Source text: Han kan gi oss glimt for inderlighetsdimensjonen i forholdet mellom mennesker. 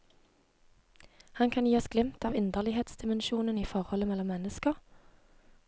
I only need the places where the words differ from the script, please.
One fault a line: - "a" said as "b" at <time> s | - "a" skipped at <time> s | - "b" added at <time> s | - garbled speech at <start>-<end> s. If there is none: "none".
- "for" said as "av" at 2.2 s